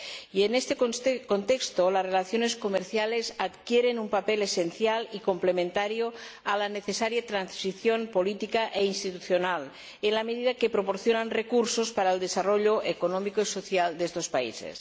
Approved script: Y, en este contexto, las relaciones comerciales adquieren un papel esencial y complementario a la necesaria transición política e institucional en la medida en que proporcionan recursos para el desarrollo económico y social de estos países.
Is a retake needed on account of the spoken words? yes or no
no